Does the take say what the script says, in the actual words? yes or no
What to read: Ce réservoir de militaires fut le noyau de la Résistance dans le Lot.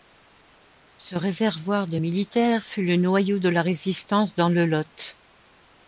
yes